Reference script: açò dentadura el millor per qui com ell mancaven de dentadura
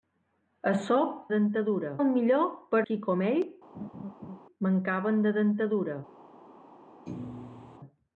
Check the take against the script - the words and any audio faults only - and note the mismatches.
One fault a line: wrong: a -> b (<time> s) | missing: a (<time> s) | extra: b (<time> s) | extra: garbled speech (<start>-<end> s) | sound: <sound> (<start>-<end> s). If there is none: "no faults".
sound: laugh (3.7-4.4 s)
sound: thud (7.1-7.8 s)